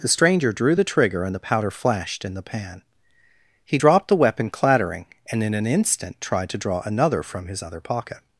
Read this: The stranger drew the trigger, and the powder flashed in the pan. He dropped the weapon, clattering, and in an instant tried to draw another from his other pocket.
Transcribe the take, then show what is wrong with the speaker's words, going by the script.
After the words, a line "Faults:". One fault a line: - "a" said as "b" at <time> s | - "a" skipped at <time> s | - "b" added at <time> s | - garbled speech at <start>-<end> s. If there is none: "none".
The stranger drew the trigger, and the powder flashed in the pan. He dropped the weapon, clattering, and in an instant tried to draw another from his other pocket.
Faults:
none